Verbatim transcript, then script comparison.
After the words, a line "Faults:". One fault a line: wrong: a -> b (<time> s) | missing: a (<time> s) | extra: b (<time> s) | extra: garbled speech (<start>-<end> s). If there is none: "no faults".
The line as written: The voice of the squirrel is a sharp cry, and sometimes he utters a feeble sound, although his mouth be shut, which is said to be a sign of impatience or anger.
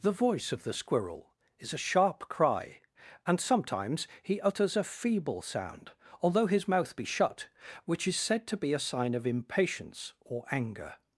The voice of the squirrel is a sharp cry, and sometimes he utters a feeble sound, although his mouth be shut, which is said to be a sign of impatience or anger.
Faults:
no faults